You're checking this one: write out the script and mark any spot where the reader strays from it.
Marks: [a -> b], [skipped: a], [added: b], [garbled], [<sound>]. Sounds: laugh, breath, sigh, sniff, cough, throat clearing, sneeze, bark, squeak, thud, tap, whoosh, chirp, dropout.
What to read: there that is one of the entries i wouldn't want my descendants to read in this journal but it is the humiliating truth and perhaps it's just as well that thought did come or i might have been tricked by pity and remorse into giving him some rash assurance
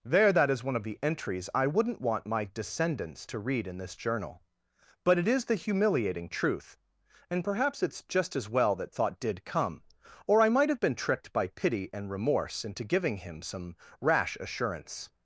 there that is one of the entries i wouldn't want my descendants to read in this journal but it is the humiliating truth and perhaps it's just as well that thought did come or i might have been tricked by pity and remorse into giving him some rash assurance